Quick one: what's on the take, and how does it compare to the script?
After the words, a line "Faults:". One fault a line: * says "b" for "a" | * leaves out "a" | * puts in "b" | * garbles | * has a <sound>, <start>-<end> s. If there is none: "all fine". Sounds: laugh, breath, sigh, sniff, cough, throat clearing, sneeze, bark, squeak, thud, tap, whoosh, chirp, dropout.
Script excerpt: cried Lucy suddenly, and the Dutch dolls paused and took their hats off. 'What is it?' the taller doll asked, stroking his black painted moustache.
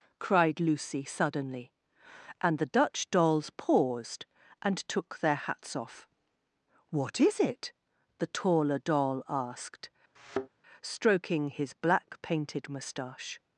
cried Lucy suddenly, and the Dutch dolls paused and took their hats off. 'What is it?' the taller doll asked, stroking his black painted moustache.
Faults:
* has a thud, 10.2-10.5 s